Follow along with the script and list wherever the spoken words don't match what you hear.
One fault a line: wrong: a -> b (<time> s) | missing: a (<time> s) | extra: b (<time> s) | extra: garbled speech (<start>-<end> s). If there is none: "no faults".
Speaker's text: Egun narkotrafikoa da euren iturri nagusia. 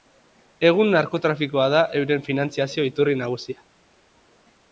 extra: finantziazio (2.3 s)